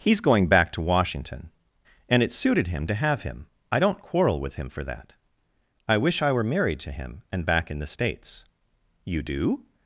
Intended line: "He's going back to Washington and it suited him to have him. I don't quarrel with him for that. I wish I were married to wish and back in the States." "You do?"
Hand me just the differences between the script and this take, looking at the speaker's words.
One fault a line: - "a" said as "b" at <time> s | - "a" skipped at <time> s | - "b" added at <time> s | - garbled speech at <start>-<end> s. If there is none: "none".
- "wish" said as "him" at 6.9 s